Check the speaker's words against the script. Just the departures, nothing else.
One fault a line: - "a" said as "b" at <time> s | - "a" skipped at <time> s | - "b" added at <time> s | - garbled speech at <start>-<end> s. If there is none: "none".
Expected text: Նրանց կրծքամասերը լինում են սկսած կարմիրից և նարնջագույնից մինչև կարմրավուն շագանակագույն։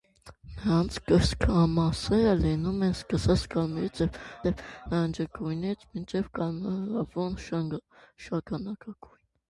- "և" added at 4.5 s